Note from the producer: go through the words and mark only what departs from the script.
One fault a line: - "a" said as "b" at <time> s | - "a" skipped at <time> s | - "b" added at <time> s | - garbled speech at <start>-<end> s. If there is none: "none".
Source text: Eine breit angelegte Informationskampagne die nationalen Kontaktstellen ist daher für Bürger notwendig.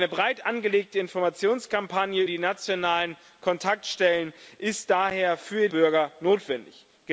none